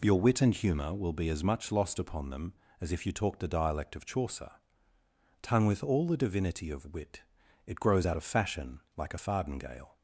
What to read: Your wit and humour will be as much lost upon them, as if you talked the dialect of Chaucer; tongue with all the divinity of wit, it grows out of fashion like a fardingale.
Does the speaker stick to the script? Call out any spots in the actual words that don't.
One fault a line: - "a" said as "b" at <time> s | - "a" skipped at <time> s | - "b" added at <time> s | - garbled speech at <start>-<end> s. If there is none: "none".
none